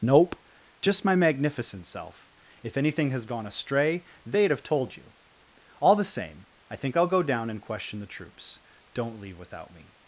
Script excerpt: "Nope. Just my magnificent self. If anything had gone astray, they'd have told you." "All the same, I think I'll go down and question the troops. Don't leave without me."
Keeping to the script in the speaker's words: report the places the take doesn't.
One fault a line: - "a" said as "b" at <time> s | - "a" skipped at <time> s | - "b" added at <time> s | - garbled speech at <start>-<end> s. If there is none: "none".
- "had" said as "has" at 3.1 s